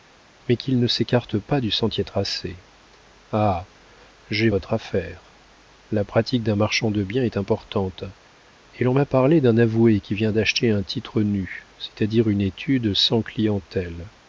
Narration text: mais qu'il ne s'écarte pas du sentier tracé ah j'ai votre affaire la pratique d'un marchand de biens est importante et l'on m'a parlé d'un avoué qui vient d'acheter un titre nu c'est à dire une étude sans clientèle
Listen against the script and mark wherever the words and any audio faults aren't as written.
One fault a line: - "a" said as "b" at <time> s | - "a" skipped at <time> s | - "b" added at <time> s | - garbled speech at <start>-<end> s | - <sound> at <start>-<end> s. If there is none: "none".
none